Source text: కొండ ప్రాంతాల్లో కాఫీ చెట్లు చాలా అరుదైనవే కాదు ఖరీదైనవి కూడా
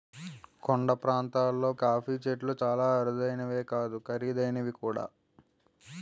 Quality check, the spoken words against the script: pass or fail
pass